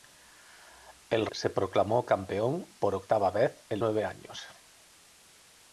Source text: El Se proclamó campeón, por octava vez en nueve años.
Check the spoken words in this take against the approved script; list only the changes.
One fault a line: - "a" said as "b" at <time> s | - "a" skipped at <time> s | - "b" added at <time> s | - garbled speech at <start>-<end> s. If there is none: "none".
none